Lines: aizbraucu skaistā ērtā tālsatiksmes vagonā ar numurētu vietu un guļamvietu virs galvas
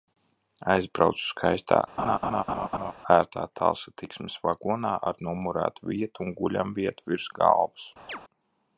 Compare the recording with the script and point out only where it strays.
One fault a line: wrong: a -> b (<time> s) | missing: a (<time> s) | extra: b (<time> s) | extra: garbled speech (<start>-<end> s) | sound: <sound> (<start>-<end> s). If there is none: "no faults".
sound: laugh (2.0-2.9 s)
sound: chirp (8.1-8.2 s)